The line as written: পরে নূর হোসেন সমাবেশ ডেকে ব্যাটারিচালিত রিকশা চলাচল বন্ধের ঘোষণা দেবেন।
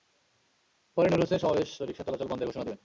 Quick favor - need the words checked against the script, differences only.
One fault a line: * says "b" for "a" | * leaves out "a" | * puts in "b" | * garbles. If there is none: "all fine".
* leaves out "ডেকে ব্যাটারিচালিত"